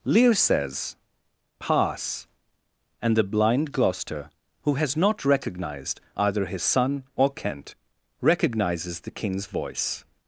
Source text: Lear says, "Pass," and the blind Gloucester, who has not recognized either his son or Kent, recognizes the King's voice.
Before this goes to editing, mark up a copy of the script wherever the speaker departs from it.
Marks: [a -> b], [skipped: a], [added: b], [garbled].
Lear says, "Pass," and the blind Gloucester, who has not recognized either his son or Kent, recognizes the King's voice.